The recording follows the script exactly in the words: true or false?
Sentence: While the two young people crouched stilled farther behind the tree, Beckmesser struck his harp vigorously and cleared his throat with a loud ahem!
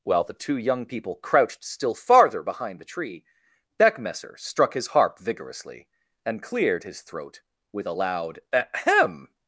false